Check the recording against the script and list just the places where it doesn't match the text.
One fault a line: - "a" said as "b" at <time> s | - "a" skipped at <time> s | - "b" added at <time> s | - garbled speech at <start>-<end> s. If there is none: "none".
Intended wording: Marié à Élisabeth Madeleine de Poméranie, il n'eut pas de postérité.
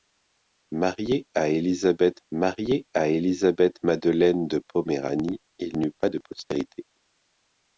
- "marié à Élisabeth" added at 2.3 s